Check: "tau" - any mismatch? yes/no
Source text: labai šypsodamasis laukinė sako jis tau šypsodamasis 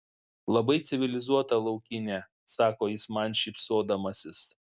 yes